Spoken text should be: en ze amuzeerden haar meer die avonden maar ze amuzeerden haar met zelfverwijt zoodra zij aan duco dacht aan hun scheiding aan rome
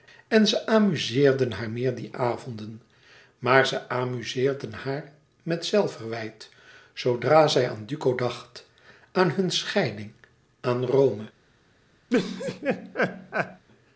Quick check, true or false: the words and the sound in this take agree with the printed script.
false